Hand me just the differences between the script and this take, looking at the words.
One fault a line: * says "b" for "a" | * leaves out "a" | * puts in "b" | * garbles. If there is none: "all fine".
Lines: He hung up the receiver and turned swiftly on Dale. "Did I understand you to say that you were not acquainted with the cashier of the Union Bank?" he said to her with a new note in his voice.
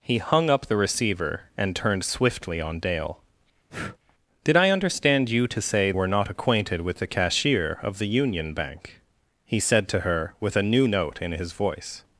* leaves out "that you"